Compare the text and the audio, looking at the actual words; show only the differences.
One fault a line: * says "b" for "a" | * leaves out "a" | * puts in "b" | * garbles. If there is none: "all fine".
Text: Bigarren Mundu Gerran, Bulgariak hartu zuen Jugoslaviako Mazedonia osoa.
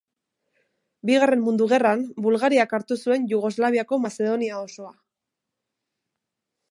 all fine